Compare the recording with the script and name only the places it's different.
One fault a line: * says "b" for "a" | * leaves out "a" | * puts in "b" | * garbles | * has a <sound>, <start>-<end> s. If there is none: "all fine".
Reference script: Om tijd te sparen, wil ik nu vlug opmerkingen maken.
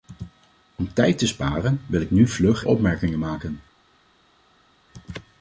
all fine